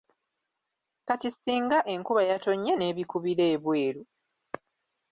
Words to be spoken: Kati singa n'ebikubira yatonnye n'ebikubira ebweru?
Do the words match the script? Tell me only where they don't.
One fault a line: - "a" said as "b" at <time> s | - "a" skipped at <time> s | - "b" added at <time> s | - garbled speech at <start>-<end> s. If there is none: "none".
- "n'ebikubira" said as "enkuba" at 1.9 s